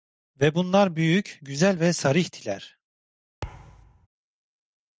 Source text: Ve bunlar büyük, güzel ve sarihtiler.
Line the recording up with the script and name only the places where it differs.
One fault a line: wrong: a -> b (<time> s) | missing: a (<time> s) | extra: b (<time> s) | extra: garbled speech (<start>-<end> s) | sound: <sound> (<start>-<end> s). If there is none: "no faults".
sound: thud (3.4-4.1 s)